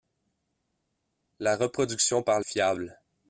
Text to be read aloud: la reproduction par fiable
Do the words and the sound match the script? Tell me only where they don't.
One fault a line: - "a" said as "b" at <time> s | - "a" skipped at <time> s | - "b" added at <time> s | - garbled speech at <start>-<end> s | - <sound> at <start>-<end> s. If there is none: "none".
none